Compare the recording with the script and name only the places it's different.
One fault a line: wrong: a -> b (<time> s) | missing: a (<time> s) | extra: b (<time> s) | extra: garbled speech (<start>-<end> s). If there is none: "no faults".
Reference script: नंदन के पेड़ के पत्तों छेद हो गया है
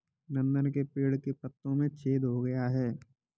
extra: में (1.8 s)